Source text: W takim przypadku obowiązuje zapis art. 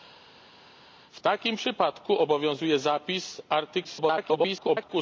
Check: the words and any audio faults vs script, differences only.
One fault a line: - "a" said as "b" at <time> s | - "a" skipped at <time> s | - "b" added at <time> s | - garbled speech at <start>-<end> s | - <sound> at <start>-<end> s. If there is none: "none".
- garbled speech at 3.8-4.9 s